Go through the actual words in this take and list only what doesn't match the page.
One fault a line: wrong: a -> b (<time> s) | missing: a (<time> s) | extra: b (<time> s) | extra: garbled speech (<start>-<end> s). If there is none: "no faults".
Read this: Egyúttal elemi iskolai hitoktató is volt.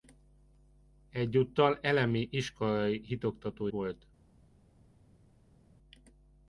missing: is (3.7 s)